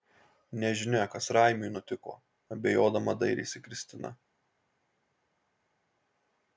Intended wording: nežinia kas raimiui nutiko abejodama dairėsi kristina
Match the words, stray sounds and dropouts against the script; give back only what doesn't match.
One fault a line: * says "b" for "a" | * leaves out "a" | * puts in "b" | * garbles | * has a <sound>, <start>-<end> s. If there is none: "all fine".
all fine